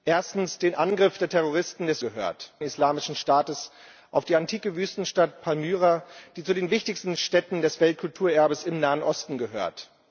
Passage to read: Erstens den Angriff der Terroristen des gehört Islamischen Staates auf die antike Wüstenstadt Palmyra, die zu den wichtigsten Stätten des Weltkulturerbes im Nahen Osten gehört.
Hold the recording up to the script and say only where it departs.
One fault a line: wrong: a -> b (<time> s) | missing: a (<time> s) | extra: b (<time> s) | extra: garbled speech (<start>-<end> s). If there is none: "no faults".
no faults